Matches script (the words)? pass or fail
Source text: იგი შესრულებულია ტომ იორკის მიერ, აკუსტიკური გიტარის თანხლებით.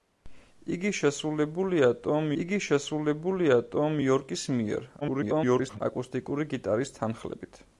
fail